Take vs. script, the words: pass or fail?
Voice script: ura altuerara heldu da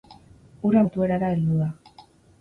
pass